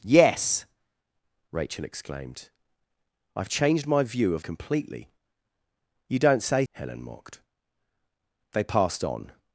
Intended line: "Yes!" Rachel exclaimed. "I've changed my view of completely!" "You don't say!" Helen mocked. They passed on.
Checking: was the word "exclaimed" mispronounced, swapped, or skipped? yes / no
no